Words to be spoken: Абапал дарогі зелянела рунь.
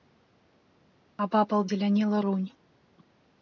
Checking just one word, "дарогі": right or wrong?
wrong